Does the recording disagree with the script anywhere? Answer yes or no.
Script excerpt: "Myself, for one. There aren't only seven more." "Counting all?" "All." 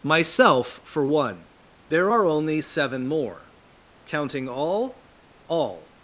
yes